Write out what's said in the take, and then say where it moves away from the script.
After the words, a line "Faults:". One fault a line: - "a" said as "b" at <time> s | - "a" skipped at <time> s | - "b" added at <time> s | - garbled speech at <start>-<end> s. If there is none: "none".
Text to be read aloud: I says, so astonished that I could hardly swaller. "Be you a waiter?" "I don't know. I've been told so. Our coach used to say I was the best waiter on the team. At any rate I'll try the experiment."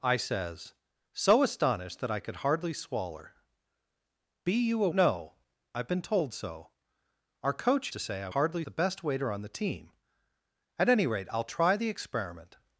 I says, so astonished that I could hardly swaller. "Be you a know. I've been told so. Our coach to say I hardly the best waiter on the team. At any rate I'll try the experiment."
Faults:
- "waiter I don't" skipped at 4.9 s
- "used" skipped at 7.9 s
- "was" said as "hardly" at 8.3 s